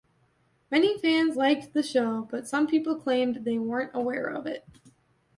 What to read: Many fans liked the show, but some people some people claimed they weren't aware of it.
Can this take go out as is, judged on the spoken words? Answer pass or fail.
fail